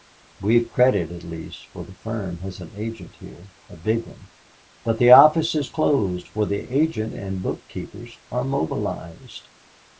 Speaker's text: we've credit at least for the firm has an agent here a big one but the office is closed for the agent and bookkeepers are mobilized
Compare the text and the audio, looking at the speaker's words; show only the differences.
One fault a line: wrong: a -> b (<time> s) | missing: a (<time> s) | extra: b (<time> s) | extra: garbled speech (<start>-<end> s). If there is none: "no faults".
no faults